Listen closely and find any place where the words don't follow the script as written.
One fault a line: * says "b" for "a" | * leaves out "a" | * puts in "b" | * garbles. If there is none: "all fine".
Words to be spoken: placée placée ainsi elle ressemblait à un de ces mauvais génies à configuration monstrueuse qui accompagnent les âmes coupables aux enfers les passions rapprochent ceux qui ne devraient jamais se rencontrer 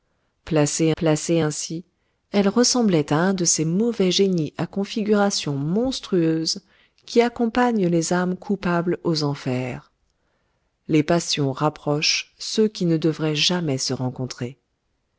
all fine